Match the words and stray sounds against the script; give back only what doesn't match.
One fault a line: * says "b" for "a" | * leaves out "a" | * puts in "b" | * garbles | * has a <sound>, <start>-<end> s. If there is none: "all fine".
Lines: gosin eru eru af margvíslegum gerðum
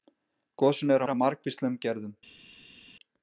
all fine